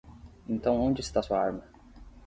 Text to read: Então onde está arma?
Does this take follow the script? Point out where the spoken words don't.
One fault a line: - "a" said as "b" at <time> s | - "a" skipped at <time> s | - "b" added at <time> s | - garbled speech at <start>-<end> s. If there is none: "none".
- "sua" added at 1.2 s